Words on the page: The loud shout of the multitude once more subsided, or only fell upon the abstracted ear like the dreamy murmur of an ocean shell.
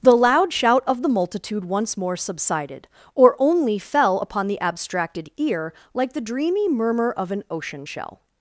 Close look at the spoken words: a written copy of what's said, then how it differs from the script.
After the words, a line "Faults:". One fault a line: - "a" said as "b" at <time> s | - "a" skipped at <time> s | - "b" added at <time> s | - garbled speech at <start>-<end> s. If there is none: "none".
The loud shout of the multitude once more subsided, or only fell upon the abstracted ear like the dreamy murmur of an ocean shell.
Faults:
none